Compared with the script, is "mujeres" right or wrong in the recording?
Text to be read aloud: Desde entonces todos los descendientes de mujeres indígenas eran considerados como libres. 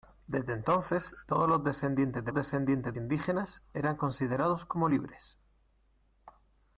wrong